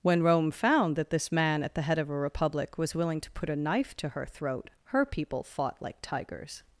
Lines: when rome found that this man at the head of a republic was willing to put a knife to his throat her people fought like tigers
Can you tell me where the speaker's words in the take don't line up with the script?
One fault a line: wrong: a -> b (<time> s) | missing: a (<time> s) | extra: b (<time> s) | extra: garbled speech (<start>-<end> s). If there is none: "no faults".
wrong: his -> her (4.1 s)